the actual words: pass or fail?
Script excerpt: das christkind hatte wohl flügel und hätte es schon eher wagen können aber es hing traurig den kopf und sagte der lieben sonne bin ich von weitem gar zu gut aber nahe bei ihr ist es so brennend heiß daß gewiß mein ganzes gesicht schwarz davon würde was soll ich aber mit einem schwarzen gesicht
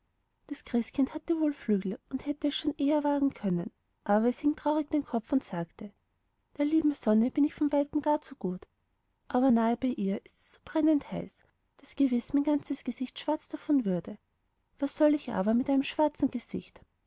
pass